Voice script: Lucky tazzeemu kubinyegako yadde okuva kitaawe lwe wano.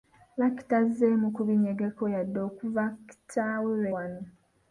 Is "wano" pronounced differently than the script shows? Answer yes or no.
no